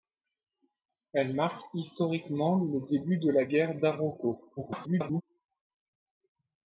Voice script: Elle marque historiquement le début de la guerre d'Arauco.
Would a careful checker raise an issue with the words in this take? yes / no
yes